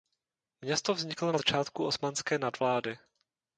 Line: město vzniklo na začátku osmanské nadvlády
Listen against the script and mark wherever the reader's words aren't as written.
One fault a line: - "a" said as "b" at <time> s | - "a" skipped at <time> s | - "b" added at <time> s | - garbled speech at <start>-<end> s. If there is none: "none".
none